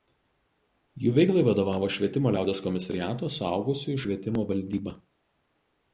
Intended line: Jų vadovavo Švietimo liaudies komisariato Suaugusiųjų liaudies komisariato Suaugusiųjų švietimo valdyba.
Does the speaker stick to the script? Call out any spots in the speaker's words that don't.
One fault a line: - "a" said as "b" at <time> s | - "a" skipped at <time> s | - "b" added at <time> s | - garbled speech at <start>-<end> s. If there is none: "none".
- "veiklai" added at 1.2 s
- "liaudies komisariato Suaugusiųjų" skipped at 4.0 s